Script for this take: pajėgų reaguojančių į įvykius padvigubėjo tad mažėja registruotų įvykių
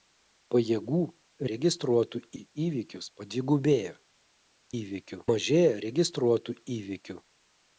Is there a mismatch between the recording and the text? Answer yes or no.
yes